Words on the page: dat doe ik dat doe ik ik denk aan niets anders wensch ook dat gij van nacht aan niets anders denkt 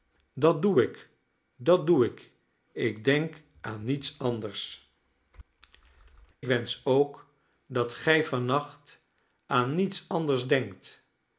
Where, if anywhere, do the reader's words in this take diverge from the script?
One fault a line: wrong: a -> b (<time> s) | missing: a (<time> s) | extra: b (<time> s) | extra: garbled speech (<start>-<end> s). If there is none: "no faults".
no faults